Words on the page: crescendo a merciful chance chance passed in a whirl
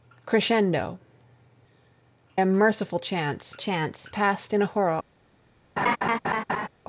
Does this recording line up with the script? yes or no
yes